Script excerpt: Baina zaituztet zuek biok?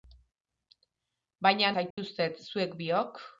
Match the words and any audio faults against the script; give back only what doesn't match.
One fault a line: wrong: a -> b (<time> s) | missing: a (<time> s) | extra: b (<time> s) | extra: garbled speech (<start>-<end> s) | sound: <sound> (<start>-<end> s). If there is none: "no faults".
sound: dropout (1.9-2.0 s)